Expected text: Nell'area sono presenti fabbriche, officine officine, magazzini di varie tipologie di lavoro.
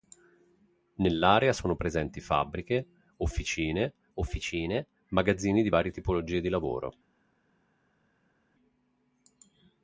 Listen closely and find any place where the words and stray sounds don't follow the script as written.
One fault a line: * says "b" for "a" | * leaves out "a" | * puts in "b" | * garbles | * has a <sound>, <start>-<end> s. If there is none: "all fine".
all fine